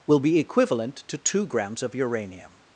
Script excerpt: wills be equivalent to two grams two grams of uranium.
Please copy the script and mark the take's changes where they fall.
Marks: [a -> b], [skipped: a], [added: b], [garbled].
[wills -> will] be equivalent to two grams [skipped: two grams] of uranium.